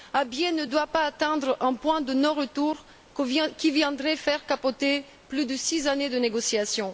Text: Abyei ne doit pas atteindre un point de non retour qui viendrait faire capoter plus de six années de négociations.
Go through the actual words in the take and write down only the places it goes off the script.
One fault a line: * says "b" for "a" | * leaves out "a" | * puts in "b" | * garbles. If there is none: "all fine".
all fine